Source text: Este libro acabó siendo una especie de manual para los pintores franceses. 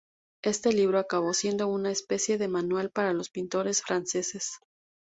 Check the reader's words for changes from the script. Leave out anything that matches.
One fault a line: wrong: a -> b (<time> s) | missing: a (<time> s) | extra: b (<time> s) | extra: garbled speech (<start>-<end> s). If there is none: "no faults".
no faults